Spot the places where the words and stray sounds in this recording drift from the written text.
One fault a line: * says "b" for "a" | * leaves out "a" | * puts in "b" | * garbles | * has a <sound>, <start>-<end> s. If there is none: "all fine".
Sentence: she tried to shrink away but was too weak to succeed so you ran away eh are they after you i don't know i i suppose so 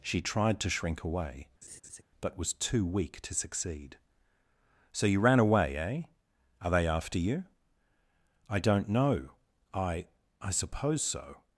* has a laugh, 1.6-2.0 s